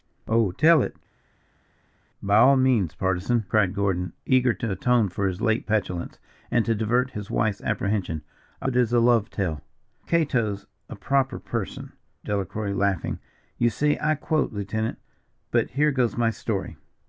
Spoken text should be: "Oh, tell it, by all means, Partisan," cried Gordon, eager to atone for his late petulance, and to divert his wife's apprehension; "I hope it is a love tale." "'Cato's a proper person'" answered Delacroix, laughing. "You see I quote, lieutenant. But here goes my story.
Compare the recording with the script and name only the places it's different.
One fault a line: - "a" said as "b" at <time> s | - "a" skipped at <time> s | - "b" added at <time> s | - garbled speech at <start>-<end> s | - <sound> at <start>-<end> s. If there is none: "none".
- "hope" skipped at 8.7 s
- "answered" skipped at 11.9 s